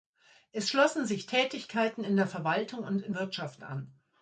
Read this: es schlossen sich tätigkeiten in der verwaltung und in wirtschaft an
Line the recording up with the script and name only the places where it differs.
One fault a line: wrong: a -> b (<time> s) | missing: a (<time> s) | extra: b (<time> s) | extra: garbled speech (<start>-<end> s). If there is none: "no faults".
no faults